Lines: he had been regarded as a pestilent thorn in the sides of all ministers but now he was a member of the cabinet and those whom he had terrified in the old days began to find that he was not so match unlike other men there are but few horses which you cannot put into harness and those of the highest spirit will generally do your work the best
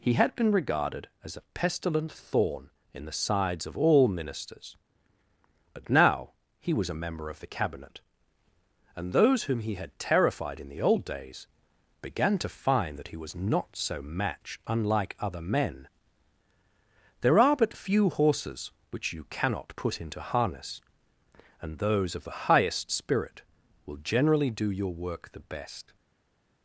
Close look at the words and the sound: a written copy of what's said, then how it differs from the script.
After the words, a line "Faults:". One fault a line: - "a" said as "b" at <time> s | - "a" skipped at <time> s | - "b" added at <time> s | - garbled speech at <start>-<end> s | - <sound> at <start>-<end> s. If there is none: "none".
he had been regarded as a pestilent thorn in the sides of all ministers but now he was a member of the cabinet and those whom he had terrified in the old days began to find that he was not so match unlike other men there are but few horses which you cannot put into harness and those of the highest spirit will generally do your work the best
Faults:
none